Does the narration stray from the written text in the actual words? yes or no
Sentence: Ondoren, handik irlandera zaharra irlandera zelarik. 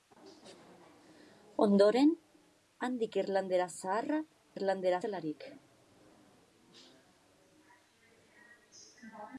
no